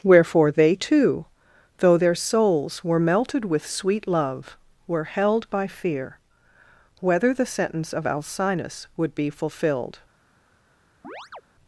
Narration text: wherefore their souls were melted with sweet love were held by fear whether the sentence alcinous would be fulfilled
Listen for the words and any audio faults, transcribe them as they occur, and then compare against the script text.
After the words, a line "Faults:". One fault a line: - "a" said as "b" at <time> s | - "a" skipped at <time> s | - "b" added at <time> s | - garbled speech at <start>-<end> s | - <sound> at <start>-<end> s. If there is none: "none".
wherefore they too though their souls were melted with sweet love were held by fear whether the sentence of alcinous would be fulfilled
Faults:
- "they too though" added at 0.5 s
- "of" added at 7.9 s
- chirp at 11.0-11.4 s